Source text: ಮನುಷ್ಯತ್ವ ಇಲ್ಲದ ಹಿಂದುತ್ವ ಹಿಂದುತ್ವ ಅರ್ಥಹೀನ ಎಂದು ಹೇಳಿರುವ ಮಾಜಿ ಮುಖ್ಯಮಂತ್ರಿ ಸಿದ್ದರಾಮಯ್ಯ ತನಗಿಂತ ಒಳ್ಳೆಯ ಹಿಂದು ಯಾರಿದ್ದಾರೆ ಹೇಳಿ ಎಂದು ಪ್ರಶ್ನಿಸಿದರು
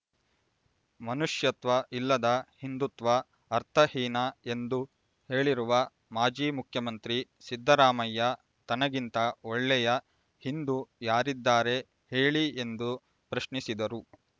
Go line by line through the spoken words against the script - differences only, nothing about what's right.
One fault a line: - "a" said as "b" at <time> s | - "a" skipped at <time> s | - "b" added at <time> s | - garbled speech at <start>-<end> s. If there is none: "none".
- "ಹಿಂದುತ್ವ" skipped at 3.1 s